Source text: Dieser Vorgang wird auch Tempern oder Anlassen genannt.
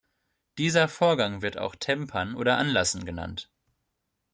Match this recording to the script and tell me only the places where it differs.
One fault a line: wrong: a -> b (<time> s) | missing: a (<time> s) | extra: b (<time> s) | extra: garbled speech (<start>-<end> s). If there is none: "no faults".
no faults